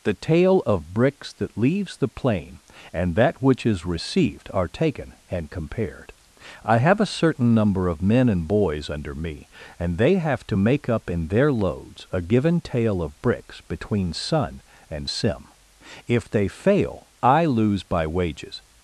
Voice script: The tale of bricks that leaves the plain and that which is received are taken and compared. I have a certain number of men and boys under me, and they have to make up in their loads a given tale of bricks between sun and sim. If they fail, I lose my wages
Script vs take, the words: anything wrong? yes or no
yes